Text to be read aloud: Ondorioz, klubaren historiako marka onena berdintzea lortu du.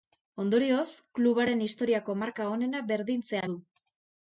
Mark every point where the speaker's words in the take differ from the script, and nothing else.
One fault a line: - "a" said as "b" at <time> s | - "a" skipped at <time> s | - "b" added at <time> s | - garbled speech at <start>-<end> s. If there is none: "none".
- "lortu" skipped at 3.4 s